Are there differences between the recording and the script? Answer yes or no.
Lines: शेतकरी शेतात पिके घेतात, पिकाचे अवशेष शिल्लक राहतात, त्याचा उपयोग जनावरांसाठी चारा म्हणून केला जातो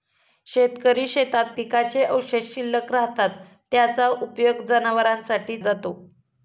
yes